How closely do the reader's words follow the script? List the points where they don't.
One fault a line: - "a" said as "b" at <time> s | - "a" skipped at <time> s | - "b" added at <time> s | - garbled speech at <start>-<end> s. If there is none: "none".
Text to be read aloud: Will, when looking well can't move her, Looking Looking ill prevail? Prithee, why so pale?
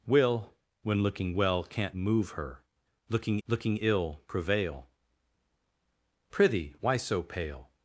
none